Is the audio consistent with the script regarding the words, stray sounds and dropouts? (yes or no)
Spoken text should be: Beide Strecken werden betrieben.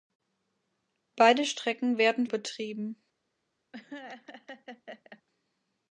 no